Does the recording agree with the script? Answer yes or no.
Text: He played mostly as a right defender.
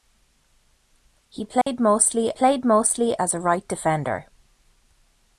no